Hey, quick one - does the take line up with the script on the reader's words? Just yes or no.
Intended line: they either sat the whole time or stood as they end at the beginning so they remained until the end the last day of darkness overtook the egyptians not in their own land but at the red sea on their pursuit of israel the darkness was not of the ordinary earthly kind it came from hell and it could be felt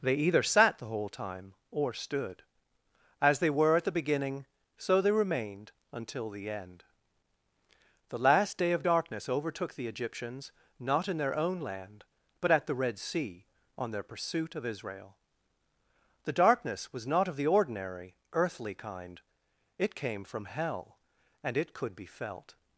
no